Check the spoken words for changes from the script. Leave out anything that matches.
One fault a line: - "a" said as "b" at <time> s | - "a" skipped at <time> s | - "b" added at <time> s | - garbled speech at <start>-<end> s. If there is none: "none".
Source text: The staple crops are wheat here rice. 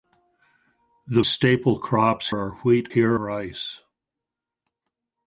none